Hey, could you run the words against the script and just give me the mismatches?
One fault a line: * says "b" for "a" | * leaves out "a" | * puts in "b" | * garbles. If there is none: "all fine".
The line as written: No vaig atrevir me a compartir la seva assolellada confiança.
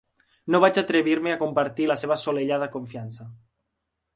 all fine